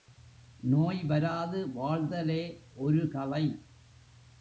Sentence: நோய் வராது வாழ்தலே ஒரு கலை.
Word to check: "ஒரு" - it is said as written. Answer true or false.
true